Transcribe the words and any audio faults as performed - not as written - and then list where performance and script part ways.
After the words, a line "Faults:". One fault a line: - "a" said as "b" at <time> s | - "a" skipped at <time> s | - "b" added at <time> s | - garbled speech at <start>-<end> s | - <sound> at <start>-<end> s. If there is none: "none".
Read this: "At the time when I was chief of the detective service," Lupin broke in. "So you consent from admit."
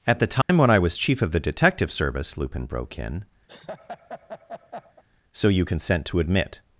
"At the time when I was chief of the detective service," Lupin broke in. "So you consent to admit."
Faults:
- dropout at 0.4-0.5 s
- laugh at 3.5-5.0 s
- "from" said as "to" at 6.1 s